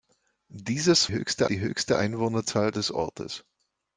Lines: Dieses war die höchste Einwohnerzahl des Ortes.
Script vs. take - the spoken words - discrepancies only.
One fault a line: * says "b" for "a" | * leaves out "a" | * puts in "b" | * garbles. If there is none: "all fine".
* says "höchste" for "war"